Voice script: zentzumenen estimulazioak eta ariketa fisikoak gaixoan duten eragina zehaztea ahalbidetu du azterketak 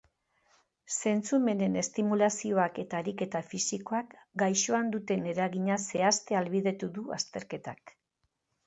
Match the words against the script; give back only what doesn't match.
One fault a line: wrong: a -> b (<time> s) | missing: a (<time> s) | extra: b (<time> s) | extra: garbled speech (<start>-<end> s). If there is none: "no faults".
no faults